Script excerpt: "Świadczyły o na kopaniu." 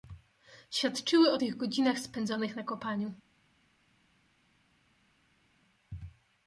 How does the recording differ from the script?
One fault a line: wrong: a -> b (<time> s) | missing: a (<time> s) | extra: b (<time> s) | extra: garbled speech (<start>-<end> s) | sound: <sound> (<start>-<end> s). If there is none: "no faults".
extra: tych godzinach spędzonych (1.3 s)